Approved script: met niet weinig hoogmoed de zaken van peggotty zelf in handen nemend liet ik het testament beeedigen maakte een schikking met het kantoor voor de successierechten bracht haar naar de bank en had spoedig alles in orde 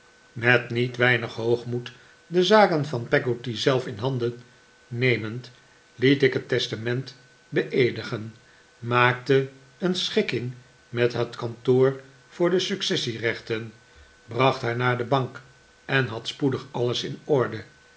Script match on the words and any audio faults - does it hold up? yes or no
yes